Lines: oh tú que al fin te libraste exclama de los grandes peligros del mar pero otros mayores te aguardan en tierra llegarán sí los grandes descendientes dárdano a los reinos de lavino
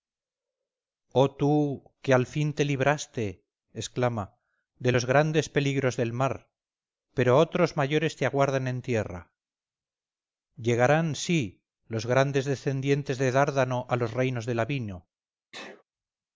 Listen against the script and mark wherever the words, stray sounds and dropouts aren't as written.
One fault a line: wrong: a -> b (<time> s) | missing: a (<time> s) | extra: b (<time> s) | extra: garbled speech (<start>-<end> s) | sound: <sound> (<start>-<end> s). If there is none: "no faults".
extra: de (13.2 s)
sound: sneeze (15.5-15.8 s)